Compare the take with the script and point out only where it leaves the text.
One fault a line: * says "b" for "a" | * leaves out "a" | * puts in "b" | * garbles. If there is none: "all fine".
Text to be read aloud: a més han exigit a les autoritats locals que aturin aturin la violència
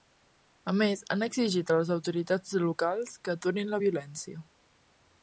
* leaves out "aturin"